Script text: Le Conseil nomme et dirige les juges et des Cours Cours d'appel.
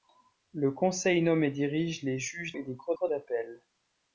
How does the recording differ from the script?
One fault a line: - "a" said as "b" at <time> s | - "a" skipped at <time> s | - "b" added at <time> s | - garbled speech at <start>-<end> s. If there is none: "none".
none